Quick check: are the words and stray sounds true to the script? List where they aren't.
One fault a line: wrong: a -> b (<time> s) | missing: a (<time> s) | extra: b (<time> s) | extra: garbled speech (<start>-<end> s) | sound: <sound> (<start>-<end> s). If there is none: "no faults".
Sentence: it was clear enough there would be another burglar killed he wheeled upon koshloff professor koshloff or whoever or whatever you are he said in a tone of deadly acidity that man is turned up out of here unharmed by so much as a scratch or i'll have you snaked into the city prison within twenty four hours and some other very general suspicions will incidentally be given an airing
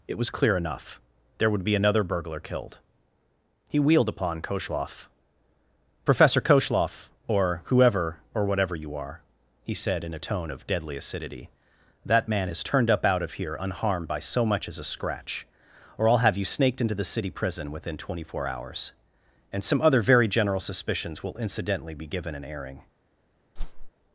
sound: whoosh (23.6-23.9 s)